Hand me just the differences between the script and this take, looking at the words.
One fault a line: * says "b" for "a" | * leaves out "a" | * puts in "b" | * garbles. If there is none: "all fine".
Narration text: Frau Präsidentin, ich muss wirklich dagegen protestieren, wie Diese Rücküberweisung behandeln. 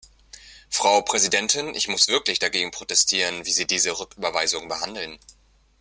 * puts in "Sie"